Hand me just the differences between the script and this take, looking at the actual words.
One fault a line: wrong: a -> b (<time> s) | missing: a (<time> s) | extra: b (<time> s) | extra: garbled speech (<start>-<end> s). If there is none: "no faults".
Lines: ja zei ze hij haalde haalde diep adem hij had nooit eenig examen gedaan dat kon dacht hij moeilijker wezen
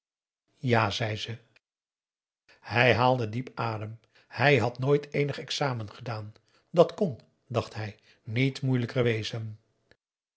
missing: haalde (3.3 s)
extra: niet (8.2 s)